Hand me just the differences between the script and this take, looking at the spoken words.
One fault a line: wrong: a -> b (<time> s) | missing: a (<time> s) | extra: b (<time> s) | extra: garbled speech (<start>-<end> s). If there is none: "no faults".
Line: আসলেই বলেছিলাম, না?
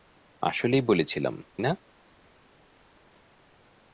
no faults